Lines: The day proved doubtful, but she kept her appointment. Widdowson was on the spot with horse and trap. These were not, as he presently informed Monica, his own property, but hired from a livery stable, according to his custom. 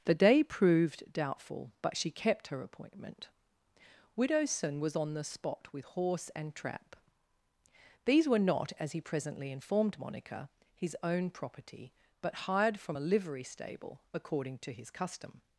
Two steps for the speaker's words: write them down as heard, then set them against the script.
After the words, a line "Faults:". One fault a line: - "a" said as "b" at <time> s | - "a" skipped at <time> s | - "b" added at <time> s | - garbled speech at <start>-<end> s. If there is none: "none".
The day proved doubtful, but she kept her appointment. Widdowson was on the spot with horse and trap. These were not, as he presently informed Monica, his own property, but hired from a livery stable, according to his custom.
Faults:
none